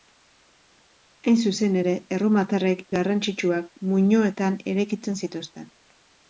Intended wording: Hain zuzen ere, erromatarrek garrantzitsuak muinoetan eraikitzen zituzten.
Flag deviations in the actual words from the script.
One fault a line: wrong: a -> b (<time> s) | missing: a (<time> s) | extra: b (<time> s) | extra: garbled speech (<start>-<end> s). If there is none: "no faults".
no faults